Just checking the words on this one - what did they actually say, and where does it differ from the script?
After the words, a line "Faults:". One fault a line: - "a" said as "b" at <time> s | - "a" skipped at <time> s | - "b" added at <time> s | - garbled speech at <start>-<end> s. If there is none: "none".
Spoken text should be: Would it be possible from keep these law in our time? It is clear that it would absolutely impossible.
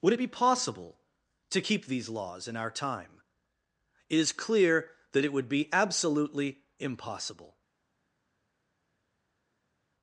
Would it be possible to keep these laws in our time? It is clear that it would be absolutely impossible.
Faults:
- "from" said as "to" at 1.5 s
- "law" said as "laws" at 2.1 s
- "be" added at 5.5 s